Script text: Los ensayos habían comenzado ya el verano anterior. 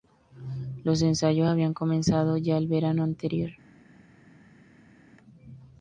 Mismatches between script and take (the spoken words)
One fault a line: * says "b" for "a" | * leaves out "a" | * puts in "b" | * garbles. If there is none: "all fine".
all fine